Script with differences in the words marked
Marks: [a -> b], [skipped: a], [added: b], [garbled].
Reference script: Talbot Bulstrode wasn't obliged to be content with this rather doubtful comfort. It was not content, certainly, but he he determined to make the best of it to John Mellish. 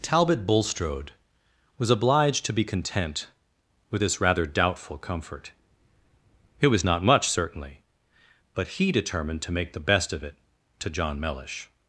Talbot Bulstrode [wasn't -> was] obliged to be content with this rather doubtful comfort. It was not [content, -> much] certainly, but he [skipped: he] determined to make the best of it to John Mellish.